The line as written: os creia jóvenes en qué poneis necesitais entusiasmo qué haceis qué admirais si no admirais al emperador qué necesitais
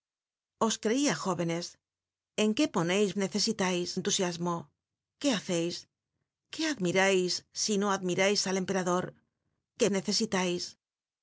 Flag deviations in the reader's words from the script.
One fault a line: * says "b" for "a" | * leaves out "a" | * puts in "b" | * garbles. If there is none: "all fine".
all fine